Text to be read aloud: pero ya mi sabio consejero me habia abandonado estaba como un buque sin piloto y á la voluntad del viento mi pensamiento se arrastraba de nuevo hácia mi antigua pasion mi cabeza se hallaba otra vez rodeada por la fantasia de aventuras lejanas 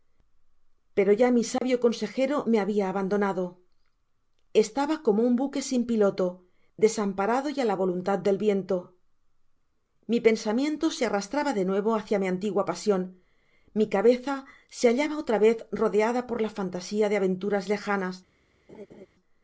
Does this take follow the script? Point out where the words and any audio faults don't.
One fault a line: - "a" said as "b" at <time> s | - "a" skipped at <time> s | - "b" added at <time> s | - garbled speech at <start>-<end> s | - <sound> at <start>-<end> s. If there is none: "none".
- dropout at 1.6-1.6 s
- "desamparado" added at 6.8 s
- laugh at 18.7-19.1 s